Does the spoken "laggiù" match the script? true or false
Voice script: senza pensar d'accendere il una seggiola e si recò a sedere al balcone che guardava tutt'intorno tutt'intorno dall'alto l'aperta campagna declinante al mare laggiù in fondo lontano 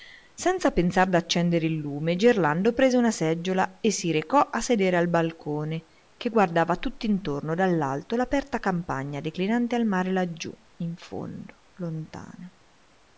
true